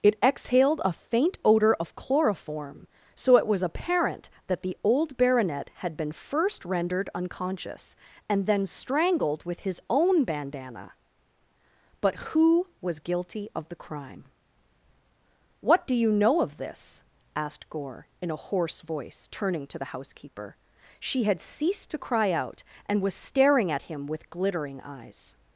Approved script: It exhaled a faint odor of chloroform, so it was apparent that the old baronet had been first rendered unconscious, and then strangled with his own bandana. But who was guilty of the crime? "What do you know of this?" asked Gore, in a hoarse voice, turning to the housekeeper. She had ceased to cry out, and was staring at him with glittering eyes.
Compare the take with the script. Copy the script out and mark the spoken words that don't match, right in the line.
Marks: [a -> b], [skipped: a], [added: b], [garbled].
It exhaled a faint odor of chloroform, so it was apparent that the old baronet had been first rendered unconscious, and then strangled with his own bandana. But who was guilty of the crime? "What do you know of this?" asked Gore, in a hoarse voice, turning to the housekeeper. She had ceased to cry out, and was staring at him with glittering eyes.